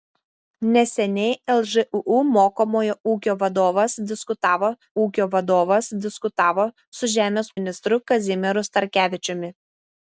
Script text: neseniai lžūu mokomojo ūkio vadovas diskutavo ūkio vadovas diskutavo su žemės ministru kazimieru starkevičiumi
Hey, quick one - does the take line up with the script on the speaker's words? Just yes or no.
yes